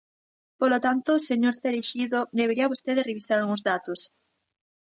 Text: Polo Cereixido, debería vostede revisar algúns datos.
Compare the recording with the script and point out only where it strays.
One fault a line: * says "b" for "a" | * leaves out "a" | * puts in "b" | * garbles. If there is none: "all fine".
* puts in "tanto señor"